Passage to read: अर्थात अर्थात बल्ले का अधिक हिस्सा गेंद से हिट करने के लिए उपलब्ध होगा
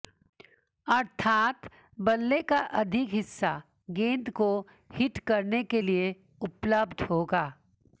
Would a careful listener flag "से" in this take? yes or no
yes